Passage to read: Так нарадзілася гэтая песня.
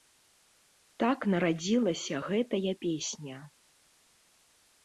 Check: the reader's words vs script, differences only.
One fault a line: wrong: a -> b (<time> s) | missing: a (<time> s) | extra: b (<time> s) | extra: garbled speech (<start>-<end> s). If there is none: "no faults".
no faults